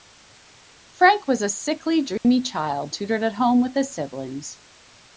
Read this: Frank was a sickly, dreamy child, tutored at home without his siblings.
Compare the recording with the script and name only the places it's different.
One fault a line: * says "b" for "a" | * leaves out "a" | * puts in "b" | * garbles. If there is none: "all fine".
* says "with" for "without"